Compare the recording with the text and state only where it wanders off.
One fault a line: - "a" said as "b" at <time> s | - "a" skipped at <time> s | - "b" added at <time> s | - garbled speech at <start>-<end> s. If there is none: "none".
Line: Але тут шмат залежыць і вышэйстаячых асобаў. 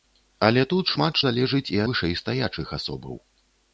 none